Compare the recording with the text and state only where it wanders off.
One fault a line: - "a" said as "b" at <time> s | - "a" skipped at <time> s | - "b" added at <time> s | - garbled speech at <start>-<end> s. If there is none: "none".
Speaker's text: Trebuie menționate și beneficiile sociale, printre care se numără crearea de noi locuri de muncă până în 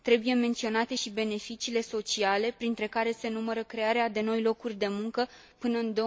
none